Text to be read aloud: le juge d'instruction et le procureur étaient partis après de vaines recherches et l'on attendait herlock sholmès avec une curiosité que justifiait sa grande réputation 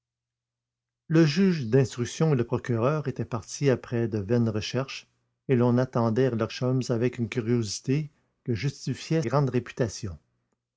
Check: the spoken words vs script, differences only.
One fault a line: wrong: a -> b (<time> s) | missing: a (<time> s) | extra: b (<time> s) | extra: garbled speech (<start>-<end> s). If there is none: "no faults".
missing: sa (9.2 s)